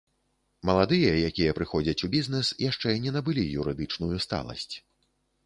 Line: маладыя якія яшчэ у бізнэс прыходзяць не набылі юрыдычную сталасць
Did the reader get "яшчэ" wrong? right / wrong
wrong